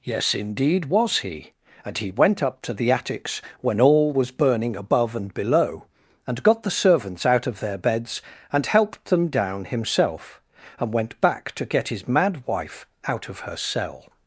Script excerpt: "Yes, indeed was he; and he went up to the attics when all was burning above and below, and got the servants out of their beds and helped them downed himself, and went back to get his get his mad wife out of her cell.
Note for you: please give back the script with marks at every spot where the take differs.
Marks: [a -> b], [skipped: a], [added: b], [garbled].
"Yes, indeed was he; and he went up to the attics when all was burning above and below, and got the servants out of their beds and helped them [downed -> down] himself, and went back to get his [skipped: get his] mad wife out of her cell.